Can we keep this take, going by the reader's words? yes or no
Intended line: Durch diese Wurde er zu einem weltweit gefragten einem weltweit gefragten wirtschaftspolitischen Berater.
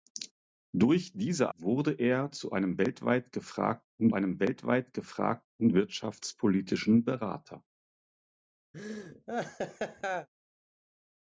yes